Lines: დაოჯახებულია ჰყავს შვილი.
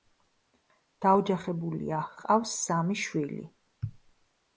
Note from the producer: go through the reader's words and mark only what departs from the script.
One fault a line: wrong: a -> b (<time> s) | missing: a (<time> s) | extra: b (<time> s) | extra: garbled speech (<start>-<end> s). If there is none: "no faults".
extra: სამი (2.7 s)